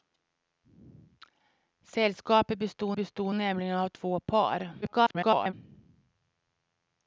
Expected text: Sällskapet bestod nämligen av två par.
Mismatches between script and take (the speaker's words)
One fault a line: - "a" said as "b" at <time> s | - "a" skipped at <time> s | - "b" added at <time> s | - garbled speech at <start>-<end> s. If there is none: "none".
- "bestod" added at 3.0 s
- garbled speech at 4.8-5.5 s